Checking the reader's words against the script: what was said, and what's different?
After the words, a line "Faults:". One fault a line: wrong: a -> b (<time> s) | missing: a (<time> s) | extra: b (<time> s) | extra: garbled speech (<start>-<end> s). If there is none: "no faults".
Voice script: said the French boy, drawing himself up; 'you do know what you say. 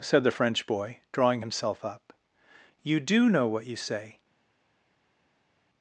said the French boy, drawing himself up; 'you do know what you say.
Faults:
no faults